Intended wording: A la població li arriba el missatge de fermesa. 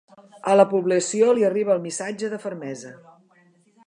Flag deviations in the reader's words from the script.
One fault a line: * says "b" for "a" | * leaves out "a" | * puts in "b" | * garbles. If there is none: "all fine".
all fine